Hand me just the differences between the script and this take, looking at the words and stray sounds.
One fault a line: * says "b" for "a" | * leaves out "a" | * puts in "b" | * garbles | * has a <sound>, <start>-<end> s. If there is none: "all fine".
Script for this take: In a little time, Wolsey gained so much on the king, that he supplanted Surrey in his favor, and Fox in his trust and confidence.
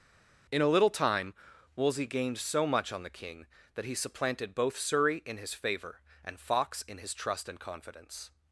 * puts in "both"